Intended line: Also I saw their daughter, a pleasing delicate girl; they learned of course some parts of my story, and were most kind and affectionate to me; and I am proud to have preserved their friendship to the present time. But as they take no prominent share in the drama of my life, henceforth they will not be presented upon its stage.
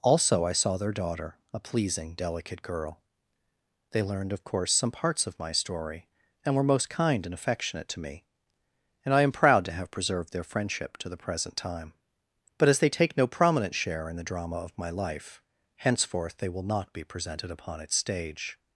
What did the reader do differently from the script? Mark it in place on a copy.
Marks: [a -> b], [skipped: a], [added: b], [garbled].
Also I saw their daughter, a pleasing delicate girl; they learned of course some parts of my story, and were most kind and affectionate to me; and I am proud to have preserved their friendship to the present time. But as they take no prominent share in the drama of my life, henceforth they will not be presented upon its stage.